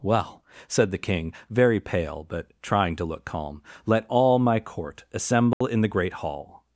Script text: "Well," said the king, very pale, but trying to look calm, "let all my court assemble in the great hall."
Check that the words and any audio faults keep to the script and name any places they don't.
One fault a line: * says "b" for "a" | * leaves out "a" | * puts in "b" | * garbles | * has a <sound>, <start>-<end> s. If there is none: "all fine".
* has a dropout, 5.5-5.6 s